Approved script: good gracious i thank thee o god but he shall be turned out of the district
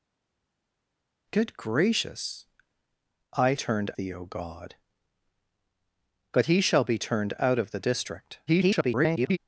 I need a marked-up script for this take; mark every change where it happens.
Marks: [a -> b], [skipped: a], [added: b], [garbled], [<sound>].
good gracious i [thank -> turned] thee o god but he shall be turned out of the district [garbled]